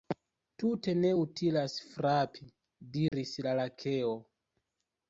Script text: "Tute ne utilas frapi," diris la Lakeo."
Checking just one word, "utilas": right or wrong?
right